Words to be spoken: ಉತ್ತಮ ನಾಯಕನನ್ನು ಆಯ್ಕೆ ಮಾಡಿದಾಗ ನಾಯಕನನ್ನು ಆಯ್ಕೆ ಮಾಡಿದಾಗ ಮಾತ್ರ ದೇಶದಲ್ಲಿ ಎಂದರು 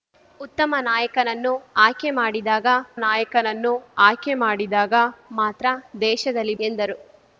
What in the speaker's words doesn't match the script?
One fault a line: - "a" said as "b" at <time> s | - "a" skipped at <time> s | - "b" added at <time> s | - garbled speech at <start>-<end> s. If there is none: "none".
none